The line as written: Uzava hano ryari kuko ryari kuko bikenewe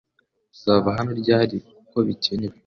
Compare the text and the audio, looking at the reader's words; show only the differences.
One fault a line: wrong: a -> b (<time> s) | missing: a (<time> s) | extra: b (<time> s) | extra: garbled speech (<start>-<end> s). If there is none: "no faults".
missing: ryari kuko (2.0 s)